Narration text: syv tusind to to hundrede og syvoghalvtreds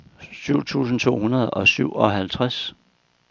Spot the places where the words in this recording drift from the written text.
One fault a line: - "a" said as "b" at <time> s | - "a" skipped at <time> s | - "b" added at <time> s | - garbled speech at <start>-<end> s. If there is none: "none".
- "to" skipped at 1.2 s